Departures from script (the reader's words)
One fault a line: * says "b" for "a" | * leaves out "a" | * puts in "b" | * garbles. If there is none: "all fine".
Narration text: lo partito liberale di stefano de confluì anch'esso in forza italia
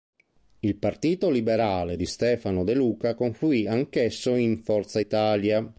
* says "il" for "lo"
* puts in "luca"